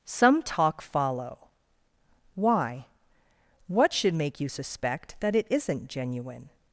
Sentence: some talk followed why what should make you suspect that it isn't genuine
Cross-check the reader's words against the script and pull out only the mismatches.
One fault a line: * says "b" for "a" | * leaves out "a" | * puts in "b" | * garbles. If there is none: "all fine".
* says "follow" for "followed"